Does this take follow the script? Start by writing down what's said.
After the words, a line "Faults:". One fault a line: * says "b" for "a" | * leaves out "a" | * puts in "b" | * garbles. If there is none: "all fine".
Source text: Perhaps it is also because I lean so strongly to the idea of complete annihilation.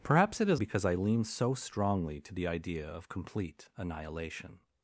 Perhaps it is because I lean so strongly to the idea of complete annihilation.
Faults:
* leaves out "also"